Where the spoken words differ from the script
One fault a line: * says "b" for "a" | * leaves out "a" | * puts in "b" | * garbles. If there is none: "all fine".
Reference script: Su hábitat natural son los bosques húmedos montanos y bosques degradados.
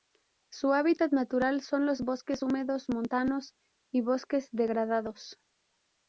all fine